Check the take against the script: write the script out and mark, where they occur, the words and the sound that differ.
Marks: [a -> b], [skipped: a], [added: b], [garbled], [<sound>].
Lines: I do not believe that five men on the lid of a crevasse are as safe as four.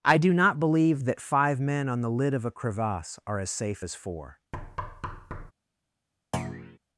I do not believe that five men on the lid of a crevasse are as safe as four. [thud] [thud]